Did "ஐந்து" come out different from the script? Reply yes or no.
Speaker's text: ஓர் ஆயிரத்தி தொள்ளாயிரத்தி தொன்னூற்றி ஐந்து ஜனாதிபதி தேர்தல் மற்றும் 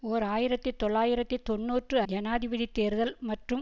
yes